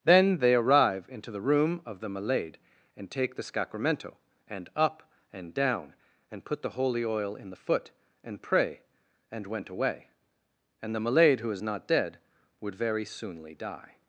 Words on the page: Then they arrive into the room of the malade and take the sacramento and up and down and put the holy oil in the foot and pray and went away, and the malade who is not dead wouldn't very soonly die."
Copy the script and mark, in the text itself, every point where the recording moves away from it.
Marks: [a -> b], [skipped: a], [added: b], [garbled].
Then they arrive into the room of the malade and take the sacramento and up and down and put the holy oil in the foot and pray and went away, and the malade who is not dead [wouldn't -> would] very soonly die."